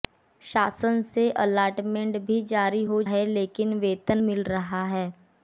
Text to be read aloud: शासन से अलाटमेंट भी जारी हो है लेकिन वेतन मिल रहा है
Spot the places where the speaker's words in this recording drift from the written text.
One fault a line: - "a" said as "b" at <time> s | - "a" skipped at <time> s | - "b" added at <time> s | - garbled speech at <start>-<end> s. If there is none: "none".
none